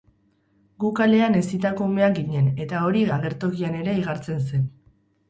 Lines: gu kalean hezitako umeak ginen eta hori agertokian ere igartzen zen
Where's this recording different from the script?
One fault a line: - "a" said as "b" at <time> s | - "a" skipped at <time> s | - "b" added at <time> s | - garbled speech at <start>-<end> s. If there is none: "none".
none